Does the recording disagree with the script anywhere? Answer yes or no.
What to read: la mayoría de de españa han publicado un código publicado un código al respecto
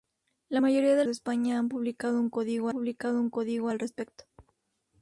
no